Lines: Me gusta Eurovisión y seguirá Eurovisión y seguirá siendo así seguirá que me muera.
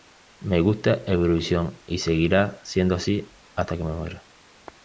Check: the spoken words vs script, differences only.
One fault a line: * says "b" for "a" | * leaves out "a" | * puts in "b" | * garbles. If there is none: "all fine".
* leaves out "Eurovisión y seguirá"
* says "hasta" for "seguirá"